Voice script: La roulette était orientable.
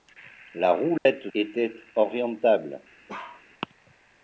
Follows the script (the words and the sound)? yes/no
no